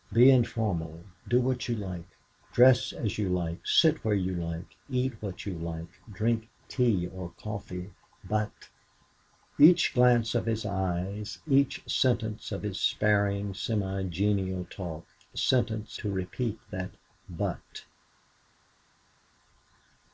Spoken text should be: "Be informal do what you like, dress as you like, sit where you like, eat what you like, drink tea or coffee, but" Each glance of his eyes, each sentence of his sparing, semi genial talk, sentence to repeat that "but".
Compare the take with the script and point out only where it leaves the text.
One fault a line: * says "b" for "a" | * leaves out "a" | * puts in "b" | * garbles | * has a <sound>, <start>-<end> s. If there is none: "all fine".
all fine